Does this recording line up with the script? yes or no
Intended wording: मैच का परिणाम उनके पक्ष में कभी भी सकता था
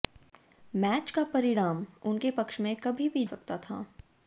yes